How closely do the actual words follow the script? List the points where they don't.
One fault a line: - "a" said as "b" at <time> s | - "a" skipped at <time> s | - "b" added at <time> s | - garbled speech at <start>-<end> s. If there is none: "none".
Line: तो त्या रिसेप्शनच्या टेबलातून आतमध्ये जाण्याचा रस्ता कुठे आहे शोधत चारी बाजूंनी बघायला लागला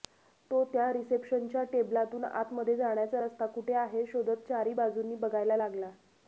none